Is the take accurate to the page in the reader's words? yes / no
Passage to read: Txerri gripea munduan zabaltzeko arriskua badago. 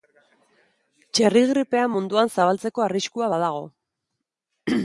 yes